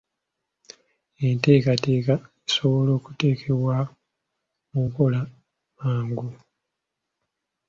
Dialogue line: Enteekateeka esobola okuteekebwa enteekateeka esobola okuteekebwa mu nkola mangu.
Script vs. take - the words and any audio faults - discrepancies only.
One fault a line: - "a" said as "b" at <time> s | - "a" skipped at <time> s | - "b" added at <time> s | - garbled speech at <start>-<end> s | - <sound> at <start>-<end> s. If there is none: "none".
- "enteekateeka esobola okuteekebwa" skipped at 3.8 s